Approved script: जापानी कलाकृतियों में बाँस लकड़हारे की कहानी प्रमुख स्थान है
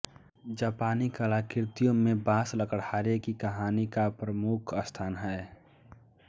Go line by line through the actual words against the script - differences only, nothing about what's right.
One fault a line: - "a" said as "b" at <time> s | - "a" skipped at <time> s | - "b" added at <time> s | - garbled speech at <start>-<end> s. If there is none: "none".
- "का" added at 3.9 s